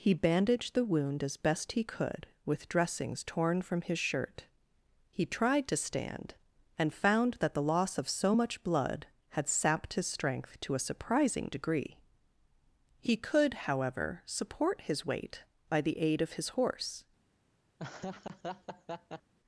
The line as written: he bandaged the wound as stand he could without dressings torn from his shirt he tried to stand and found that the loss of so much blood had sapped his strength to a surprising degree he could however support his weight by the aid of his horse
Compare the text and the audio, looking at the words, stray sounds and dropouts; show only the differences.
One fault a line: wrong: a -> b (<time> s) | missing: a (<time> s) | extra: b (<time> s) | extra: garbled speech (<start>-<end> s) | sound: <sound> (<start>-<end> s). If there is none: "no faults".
wrong: stand -> best (1.4 s)
wrong: without -> with (2.4 s)
sound: laugh (17.8-19.3 s)